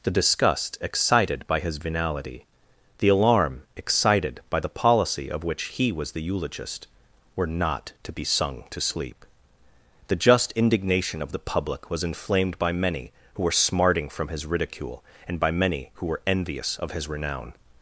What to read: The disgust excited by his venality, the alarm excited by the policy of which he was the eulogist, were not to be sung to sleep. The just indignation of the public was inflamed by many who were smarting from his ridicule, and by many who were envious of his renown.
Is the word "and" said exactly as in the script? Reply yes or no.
yes